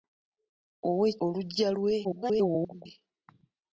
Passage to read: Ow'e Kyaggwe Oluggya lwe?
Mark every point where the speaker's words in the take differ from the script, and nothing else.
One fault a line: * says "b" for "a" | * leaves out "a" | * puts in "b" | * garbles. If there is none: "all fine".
* leaves out "Kyaggwe"
* garbles